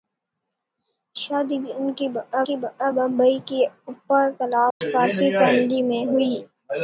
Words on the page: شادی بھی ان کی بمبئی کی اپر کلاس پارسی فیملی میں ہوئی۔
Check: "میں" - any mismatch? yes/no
no